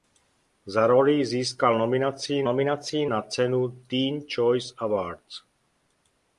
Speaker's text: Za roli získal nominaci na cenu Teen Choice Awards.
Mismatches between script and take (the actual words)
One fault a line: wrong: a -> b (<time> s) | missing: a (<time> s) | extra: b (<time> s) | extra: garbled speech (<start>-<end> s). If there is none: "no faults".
extra: nominaci (2.4 s)